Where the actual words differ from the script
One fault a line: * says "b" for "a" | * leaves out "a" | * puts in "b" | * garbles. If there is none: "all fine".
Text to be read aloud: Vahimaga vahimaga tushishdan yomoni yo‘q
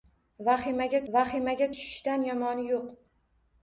all fine